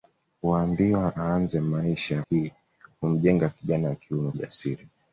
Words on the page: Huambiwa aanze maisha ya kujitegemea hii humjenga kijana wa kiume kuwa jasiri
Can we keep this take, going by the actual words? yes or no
no